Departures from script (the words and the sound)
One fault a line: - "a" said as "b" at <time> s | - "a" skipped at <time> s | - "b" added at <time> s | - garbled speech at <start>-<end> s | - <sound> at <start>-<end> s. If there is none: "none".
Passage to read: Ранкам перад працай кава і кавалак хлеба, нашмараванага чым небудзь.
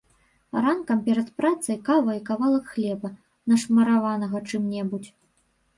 none